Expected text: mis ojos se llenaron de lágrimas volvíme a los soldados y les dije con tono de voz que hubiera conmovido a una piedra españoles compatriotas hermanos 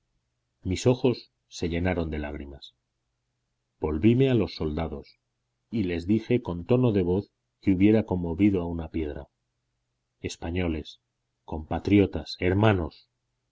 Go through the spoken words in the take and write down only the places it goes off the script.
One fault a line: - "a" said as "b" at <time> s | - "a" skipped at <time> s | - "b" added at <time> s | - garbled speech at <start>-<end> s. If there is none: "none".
none